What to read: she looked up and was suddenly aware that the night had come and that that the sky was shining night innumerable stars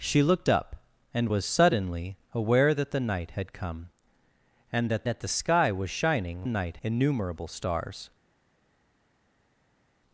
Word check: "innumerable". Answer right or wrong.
right